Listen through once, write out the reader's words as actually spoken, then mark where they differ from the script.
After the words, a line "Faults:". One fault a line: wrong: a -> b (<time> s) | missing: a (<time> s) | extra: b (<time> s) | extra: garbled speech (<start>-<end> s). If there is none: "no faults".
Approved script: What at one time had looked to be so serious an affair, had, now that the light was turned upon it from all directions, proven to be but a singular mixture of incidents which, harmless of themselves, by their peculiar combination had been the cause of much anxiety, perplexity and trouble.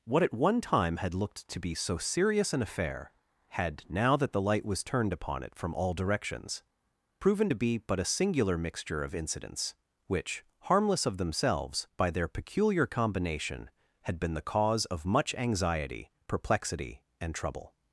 What at one time had looked to be so serious an affair, had, now that the light was turned upon it from all directions, proven to be but a singular mixture of incidents which, harmless of themselves, by their peculiar combination had been the cause of much anxiety, perplexity and trouble.
Faults:
no faults